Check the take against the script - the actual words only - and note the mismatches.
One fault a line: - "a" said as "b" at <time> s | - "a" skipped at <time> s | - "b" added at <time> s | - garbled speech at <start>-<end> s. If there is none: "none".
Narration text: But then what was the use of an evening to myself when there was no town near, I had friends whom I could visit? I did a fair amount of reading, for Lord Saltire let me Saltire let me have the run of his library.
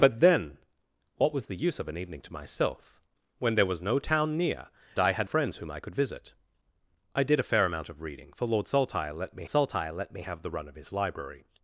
none